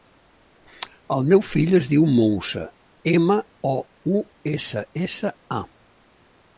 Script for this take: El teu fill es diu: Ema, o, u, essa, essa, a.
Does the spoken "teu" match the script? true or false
false